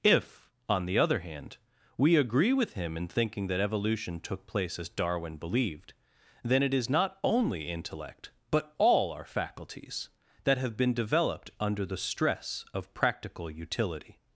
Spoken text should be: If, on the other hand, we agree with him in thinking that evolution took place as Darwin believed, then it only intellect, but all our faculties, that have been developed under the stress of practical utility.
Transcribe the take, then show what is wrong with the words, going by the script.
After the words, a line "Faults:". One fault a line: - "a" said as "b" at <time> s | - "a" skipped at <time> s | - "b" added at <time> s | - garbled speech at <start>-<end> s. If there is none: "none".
If, on the other hand, we agree with him in thinking that evolution took place as Darwin believed, then it is not only intellect, but all our faculties, that have been developed under the stress of practical utility.
Faults:
- "is not" added at 6.7 s